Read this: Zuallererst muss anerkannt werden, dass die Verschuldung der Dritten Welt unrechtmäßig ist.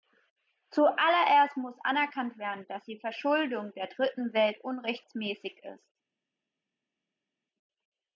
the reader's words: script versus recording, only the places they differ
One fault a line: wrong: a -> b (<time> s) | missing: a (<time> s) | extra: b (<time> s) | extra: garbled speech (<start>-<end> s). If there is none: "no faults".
no faults